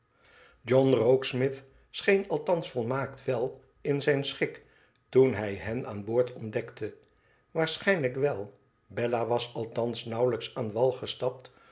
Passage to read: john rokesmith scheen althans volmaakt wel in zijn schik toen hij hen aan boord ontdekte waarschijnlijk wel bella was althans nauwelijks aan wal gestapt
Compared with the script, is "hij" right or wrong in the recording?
right